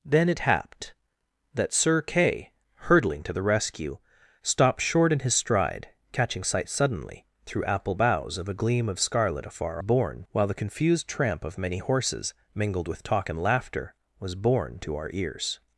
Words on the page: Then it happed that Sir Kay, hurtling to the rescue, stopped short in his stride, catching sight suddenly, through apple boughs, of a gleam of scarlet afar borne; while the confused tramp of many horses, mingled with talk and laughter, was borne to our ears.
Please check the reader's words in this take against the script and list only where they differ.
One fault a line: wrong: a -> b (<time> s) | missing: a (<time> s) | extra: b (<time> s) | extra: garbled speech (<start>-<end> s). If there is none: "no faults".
no faults